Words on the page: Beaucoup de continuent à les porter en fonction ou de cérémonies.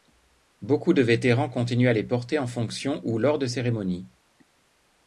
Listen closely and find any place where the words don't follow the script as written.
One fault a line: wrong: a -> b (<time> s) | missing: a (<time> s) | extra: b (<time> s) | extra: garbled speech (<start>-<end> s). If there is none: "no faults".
extra: vétérans (1.0 s)
extra: lors (3.2 s)